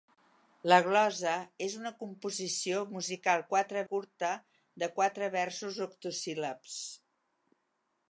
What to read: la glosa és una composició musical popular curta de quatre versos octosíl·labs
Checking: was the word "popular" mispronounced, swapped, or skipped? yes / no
yes